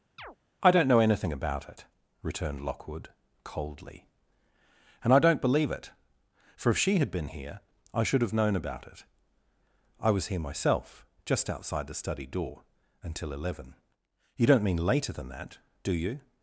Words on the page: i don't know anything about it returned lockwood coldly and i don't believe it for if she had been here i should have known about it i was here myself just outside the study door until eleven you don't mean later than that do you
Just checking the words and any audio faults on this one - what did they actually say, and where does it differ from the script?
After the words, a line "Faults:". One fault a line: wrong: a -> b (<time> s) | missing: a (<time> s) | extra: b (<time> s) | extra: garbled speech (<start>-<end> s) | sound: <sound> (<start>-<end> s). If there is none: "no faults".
i don't know anything about it returned lockwood coldly and i don't believe it for if she had been here i should have known about it i was here myself just outside the study door until eleven you don't mean later than that do you
Faults:
sound: chirp (0.2-0.4 s)